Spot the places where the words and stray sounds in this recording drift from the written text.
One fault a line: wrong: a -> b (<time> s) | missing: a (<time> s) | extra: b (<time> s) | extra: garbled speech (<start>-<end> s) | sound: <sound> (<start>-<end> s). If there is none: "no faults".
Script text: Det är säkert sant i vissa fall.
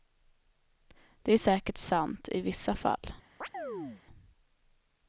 sound: chirp (3.4-4.0 s)